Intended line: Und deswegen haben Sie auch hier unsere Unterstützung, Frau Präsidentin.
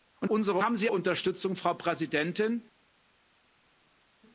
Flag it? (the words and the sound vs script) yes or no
yes